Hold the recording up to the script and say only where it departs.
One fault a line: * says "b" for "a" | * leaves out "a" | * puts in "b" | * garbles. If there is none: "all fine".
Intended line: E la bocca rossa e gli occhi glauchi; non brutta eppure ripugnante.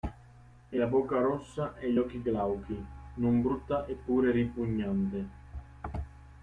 all fine